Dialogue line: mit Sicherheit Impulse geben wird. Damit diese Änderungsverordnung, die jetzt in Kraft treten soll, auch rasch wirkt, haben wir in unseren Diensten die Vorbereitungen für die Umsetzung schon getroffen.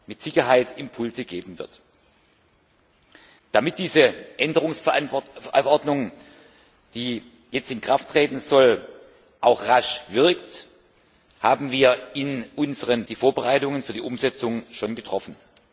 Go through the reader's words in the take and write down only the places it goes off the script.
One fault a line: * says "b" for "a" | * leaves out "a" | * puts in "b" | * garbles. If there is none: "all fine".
* leaves out "Diensten"